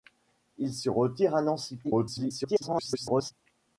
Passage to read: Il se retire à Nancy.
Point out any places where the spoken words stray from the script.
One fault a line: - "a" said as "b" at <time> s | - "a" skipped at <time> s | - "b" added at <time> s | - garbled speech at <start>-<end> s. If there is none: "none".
- garbled speech at 1.8-3.3 s